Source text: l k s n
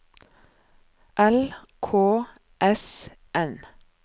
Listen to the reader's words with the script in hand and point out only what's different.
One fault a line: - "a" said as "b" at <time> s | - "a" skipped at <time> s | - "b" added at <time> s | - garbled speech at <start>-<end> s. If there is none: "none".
none